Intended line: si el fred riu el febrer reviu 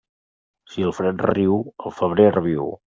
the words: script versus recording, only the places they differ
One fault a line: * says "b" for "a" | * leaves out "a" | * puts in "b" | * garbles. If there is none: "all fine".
all fine